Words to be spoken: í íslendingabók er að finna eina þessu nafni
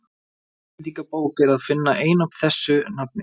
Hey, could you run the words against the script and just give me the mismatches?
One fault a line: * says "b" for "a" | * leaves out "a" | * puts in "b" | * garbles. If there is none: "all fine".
all fine